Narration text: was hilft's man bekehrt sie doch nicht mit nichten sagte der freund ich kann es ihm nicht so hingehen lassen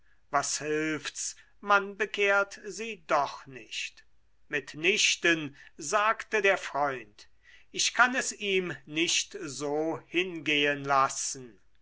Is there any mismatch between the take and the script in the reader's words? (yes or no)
no